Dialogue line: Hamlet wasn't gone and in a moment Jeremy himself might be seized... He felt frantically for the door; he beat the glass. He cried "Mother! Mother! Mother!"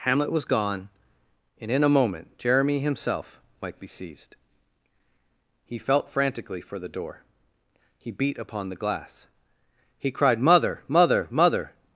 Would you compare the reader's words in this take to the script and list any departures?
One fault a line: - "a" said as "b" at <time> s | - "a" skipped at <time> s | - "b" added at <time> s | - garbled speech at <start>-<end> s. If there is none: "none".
- "wasn't" said as "was" at 0.3 s
- "upon" added at 8.4 s